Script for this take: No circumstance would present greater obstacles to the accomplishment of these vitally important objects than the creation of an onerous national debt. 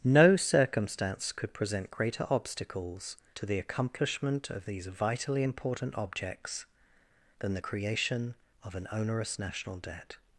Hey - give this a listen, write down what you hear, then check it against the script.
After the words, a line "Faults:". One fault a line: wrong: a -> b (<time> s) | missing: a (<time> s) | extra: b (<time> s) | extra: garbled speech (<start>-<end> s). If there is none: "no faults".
No circumstance could present greater obstacles to the accomplishment of these vitally important objects than the creation of an onerous national debt.
Faults:
wrong: would -> could (1.3 s)